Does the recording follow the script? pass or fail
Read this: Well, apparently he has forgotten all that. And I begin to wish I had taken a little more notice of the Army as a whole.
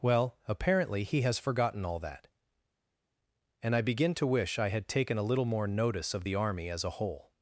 pass